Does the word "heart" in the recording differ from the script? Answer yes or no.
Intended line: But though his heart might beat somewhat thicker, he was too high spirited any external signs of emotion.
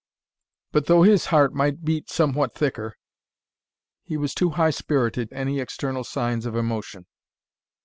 no